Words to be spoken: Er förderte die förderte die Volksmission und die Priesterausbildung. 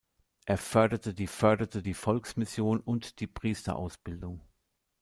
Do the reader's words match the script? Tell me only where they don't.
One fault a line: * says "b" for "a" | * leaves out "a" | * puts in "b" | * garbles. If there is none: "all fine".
all fine